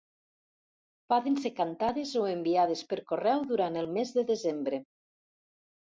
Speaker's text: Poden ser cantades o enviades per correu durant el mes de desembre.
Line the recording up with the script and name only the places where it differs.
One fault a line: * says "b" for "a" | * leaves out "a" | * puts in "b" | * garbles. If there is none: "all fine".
all fine